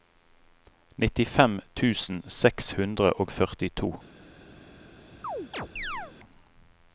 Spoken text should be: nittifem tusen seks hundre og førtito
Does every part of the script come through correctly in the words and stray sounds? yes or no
no